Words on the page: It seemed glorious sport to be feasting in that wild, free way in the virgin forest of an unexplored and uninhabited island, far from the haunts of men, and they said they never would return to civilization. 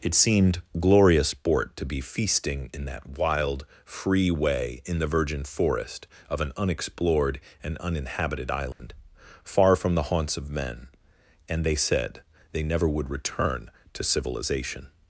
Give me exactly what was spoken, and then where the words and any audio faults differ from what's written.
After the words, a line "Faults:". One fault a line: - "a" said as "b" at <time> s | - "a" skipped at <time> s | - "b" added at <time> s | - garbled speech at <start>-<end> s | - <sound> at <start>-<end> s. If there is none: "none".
It seemed glorious sport to be feasting in that wild, free way in the virgin forest of an unexplored and uninhabited island, far from the haunts of men, and they said they never would return to civilization.
Faults:
- dropout at 8.7-8.8 s